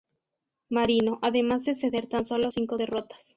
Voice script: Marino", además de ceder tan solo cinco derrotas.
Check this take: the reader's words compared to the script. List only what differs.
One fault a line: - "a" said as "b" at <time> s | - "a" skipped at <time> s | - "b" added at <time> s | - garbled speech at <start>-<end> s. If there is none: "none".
none